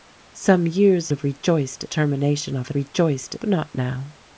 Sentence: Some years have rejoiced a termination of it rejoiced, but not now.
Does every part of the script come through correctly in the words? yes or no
yes